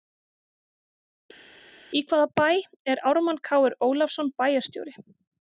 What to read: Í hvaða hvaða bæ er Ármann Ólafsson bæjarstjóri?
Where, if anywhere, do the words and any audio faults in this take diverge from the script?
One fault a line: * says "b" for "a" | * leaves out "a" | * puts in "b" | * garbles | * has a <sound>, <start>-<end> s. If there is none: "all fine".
* leaves out "hvaða"
* puts in "Kr"